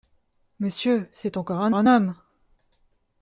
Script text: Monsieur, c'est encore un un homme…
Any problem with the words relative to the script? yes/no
no